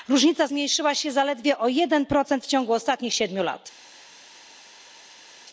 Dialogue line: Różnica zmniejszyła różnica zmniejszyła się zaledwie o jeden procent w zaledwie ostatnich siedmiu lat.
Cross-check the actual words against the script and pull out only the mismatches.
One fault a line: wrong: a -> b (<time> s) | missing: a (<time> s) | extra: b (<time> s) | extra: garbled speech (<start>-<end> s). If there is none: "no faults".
missing: różnica zmniejszyła (1.0 s)
wrong: zaledwie -> ciągu (2.5 s)